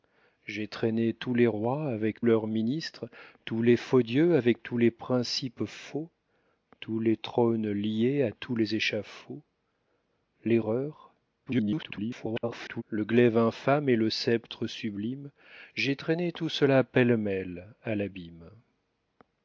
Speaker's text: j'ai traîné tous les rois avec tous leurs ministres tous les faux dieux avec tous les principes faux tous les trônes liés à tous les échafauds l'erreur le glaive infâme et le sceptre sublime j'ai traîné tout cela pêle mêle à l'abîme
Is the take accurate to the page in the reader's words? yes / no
no